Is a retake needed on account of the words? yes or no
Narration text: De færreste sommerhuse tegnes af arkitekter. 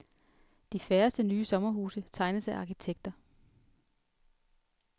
yes